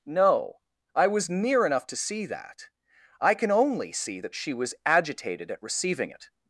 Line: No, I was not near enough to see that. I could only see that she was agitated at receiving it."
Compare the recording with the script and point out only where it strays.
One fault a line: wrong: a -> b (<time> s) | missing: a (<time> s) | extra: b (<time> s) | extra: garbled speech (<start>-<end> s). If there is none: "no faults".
missing: not (1.3 s)
wrong: could -> can (3.4 s)